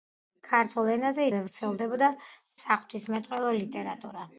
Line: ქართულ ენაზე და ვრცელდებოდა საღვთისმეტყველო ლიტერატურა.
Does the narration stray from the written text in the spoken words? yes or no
no